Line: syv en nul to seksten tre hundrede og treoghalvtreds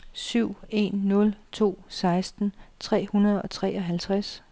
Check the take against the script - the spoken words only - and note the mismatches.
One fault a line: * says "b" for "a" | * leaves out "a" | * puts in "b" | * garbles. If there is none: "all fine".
all fine